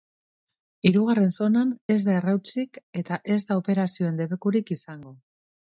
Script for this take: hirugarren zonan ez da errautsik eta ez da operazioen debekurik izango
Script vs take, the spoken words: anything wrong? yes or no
no